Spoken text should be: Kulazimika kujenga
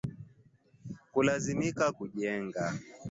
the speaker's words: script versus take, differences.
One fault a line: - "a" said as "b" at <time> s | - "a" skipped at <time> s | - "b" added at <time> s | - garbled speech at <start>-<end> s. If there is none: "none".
none